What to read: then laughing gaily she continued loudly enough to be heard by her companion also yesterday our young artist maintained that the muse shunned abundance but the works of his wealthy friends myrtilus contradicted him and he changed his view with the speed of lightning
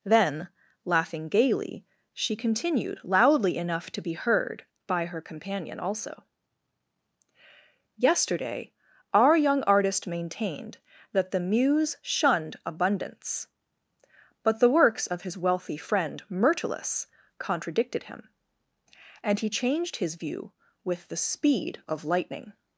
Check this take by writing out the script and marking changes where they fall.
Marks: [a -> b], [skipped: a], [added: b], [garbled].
then laughing gaily she continued loudly enough to be heard by her companion also yesterday our young artist maintained that the muse shunned abundance but the works of his wealthy [friends -> friend] myrtilus contradicted him and he changed his view with the speed of lightning